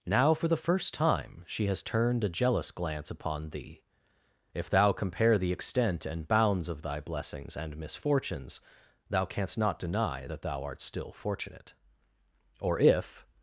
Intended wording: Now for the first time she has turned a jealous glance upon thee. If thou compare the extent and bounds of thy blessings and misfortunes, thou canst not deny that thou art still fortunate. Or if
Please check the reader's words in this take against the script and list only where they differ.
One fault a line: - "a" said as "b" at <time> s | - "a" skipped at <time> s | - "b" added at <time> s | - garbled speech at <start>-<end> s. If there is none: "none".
none